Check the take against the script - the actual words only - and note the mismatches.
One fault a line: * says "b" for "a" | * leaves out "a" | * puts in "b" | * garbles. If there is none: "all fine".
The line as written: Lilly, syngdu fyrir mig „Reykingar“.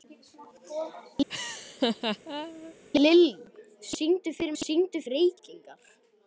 * says "syngdu" for "mig"